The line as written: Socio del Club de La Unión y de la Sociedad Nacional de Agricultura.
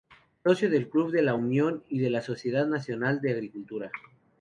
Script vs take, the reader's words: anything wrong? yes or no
no